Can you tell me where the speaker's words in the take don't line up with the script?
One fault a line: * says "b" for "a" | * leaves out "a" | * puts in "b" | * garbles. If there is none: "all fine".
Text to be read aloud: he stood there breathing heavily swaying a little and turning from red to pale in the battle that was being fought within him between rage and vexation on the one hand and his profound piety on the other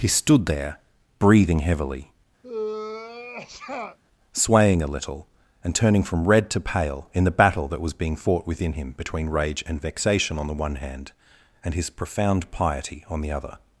all fine